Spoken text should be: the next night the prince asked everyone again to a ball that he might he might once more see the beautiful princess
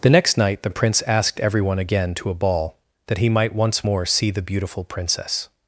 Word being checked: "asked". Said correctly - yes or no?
yes